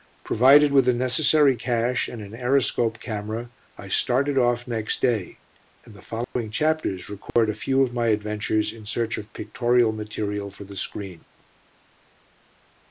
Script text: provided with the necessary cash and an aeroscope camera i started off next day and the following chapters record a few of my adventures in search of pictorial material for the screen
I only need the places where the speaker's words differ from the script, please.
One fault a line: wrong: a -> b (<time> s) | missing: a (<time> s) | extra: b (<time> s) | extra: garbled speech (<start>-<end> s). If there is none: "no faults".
no faults